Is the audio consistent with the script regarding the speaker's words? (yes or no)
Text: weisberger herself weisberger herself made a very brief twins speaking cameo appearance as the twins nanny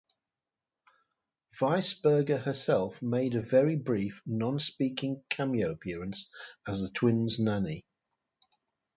no